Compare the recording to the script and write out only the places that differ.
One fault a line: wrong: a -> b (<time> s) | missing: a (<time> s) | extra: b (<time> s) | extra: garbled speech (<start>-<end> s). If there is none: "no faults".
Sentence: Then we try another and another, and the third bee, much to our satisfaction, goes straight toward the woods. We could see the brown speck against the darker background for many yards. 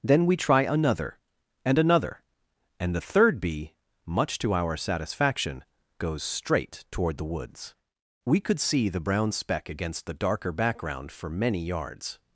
no faults